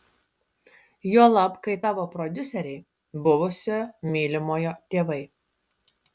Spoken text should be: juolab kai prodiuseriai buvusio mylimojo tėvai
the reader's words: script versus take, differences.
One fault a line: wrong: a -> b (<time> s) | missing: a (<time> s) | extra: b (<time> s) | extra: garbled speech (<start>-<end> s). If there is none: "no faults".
extra: tavo (1.8 s)